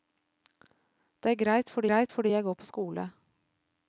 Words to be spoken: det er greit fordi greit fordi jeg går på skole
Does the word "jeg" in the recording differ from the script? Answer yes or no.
no